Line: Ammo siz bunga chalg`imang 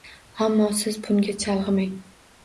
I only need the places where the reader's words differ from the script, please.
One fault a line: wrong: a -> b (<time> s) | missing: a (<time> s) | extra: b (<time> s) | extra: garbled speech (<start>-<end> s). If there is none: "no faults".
no faults